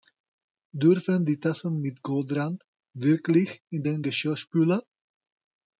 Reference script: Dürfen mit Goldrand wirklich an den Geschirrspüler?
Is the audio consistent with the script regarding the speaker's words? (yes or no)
no